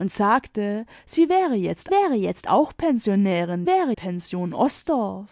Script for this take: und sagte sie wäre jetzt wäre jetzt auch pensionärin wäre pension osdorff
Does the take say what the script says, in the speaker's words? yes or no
yes